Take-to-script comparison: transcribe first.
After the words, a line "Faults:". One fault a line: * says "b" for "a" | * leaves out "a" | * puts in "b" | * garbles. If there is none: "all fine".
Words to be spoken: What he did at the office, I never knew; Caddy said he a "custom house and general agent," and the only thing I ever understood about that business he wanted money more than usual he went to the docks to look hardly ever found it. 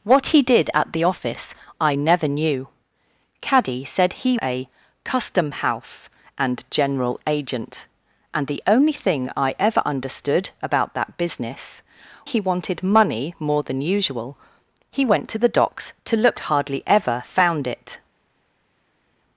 What he did at the office, I never knew; Caddy said he a "custom house and general agent," and the only thing I ever understood about that business he wanted money more than usual he went to the docks to look hardly ever found it.
Faults:
all fine